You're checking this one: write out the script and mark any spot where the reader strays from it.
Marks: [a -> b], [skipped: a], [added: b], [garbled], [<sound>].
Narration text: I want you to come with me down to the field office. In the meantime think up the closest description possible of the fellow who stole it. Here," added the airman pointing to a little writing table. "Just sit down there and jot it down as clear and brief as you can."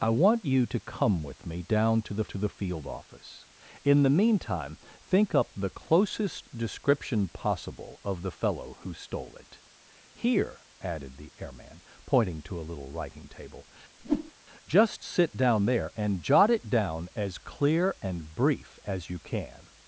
I want you to come with me down to the [added: to the] field office. In the meantime think up the closest description possible of the fellow who stole it. Here," added the airman pointing to a little writing table. [whoosh] "Just sit down there and jot it down as clear and brief as you can."